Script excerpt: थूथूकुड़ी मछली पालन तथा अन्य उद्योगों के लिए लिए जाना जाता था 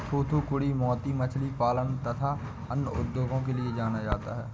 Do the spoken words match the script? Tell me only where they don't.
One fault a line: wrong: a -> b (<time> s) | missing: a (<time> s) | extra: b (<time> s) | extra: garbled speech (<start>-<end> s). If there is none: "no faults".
extra: मोती (0.7 s)
missing: लिए (3.8 s)
wrong: था -> है (4.4 s)